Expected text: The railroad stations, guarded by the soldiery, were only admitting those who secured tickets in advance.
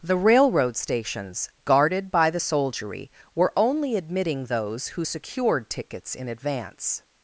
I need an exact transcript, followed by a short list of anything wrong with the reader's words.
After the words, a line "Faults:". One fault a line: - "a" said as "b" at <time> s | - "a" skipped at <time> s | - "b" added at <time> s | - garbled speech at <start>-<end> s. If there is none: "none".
The railroad stations, guarded by the soldiery, were only admitting those who secured tickets in advance.
Faults:
none